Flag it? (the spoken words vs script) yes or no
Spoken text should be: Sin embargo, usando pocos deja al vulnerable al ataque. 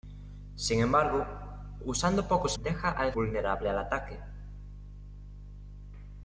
no